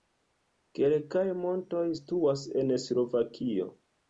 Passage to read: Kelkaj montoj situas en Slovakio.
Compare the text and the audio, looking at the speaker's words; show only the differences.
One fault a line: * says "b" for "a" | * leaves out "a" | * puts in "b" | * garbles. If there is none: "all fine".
all fine